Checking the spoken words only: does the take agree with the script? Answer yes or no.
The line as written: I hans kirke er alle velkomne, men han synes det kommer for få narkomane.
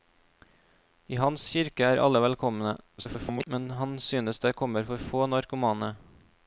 no